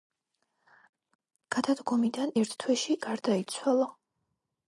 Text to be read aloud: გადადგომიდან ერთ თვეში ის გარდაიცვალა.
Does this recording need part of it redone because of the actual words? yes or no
yes